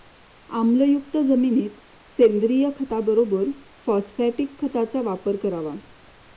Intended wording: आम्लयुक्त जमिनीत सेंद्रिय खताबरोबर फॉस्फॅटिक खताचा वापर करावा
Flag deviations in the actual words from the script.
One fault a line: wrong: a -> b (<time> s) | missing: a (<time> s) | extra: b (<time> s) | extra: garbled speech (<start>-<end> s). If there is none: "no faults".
no faults